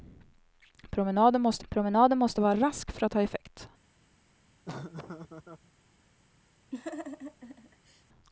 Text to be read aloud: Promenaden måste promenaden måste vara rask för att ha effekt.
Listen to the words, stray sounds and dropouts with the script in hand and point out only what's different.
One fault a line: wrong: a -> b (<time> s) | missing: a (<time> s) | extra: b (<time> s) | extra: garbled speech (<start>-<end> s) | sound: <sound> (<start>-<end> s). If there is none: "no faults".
sound: laugh (4.7-5.7 s)
sound: laugh (6.7-8.0 s)